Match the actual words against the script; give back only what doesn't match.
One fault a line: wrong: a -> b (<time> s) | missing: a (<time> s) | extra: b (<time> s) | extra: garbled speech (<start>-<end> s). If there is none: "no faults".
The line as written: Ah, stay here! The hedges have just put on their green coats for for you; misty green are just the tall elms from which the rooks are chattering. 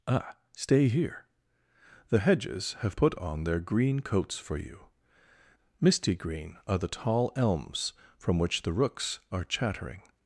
missing: just (3.0 s)
missing: for (4.6 s)
missing: just (6.8 s)